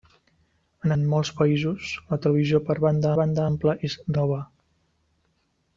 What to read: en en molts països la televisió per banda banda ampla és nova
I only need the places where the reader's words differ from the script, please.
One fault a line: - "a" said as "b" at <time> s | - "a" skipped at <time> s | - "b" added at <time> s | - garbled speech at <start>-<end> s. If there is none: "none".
none